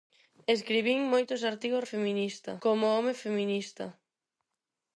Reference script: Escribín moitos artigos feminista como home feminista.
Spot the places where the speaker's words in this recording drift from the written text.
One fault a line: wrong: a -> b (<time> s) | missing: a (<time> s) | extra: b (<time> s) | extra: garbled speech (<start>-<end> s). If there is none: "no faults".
no faults